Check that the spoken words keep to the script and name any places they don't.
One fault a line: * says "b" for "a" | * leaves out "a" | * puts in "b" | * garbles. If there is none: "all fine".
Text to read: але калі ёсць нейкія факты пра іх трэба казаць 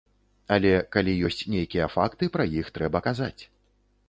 all fine